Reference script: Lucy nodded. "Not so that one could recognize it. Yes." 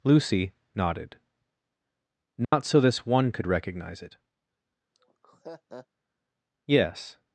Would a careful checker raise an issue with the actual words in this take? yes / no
yes